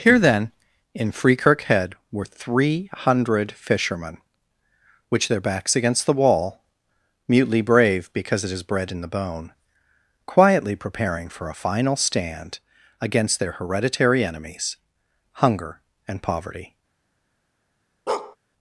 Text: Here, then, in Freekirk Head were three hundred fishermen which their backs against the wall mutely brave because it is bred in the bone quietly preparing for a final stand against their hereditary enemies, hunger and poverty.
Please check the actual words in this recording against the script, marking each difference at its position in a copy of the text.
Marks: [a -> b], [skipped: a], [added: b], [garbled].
Here, then, in Freekirk Head were three hundred fishermen which their backs against the wall mutely brave because it is bred in the bone quietly preparing for a final stand against their hereditary enemies, hunger and poverty.